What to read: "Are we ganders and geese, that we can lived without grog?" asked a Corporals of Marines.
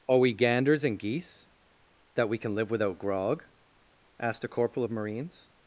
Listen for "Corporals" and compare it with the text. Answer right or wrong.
wrong